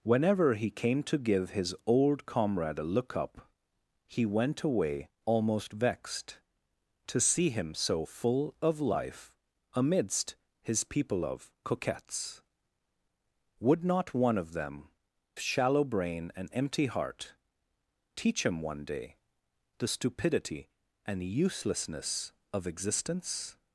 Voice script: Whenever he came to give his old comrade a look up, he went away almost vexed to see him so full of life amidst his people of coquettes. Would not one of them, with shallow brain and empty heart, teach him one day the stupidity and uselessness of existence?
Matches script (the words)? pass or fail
fail